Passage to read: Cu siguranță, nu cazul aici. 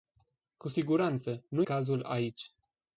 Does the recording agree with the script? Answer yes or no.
yes